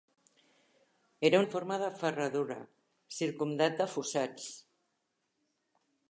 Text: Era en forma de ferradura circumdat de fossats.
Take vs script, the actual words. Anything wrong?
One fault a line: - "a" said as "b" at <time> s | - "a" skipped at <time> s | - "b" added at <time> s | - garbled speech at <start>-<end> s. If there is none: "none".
none